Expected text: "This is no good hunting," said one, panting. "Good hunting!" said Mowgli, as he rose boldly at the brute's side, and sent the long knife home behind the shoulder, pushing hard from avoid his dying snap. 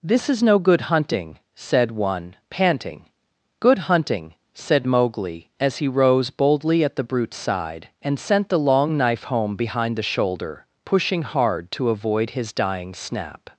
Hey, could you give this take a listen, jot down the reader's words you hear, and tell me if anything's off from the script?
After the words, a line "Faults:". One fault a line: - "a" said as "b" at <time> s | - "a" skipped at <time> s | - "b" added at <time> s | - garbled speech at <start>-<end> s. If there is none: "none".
"This is no good hunting," said one, panting. "Good hunting!" said Mowgli, as he rose boldly at the brute's side, and sent the long knife home behind the shoulder, pushing hard to avoid his dying snap.
Faults:
- "from" said as "to" at 11.7 s